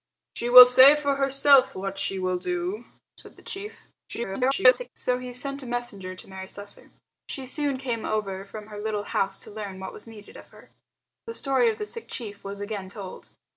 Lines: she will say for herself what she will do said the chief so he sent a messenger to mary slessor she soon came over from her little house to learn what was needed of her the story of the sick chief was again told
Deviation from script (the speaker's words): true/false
true